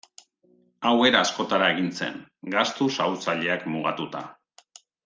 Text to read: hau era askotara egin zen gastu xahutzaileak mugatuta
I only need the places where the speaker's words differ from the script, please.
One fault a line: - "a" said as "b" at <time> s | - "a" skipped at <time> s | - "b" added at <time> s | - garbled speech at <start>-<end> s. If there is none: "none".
none